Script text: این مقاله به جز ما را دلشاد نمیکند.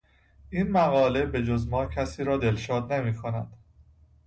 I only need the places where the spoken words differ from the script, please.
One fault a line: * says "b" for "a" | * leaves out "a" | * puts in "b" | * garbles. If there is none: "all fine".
* puts in "کسی"